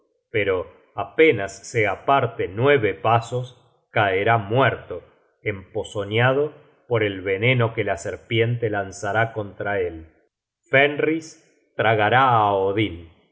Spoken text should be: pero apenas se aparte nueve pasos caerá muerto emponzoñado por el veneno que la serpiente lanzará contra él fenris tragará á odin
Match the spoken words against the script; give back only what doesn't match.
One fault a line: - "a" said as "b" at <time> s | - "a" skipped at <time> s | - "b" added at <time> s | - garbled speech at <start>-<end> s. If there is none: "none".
none